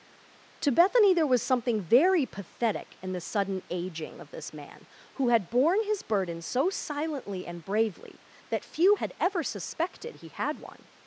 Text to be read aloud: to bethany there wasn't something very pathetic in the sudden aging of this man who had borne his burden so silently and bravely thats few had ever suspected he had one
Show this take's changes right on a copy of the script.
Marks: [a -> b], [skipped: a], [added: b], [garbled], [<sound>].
to bethany there [wasn't -> was] something very pathetic in the sudden aging of this man who had borne his burden so silently and bravely [thats -> that] few had ever suspected he had one